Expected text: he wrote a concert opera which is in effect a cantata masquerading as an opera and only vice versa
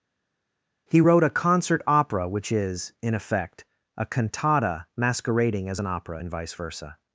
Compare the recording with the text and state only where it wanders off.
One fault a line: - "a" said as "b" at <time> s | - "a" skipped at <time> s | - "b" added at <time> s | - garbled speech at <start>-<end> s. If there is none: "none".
- "only" skipped at 6.3 s